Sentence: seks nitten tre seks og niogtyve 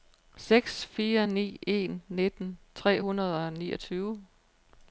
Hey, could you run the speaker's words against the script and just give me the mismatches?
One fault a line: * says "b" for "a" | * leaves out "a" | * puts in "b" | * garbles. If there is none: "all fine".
* puts in "fire ni en"
* says "hundrede" for "seks"